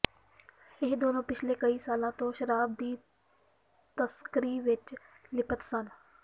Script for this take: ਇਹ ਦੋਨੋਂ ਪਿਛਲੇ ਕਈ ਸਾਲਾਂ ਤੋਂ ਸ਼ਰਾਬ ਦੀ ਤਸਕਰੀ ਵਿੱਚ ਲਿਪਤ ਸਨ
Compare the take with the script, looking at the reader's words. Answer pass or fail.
pass